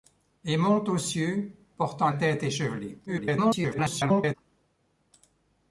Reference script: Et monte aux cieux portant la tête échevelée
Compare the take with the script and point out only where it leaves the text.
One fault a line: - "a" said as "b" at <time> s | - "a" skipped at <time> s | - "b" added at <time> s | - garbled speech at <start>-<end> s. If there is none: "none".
- "la" skipped at 2.1 s
- garbled speech at 3.1-4.3 s